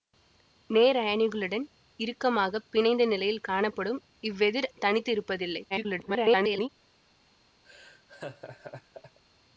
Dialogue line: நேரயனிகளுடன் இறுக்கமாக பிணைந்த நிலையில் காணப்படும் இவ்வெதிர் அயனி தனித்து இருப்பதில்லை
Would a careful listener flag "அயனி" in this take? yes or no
yes